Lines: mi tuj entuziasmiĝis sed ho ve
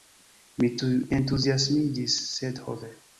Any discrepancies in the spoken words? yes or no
no